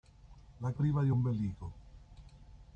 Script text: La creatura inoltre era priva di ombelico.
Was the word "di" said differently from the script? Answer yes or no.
no